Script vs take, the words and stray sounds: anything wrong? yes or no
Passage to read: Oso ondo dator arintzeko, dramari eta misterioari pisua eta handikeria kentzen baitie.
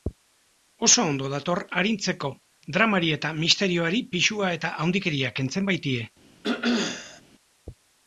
yes